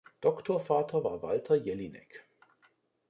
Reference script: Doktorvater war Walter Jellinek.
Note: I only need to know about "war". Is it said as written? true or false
true